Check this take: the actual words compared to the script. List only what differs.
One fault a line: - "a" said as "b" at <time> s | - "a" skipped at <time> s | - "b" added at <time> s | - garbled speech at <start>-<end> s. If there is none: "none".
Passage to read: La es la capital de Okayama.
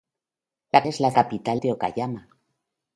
none